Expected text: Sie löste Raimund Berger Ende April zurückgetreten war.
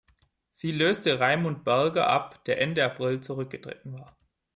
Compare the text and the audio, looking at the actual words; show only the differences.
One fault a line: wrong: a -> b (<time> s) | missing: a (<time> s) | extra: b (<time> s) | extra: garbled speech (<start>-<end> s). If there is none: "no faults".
extra: ab der (2.1 s)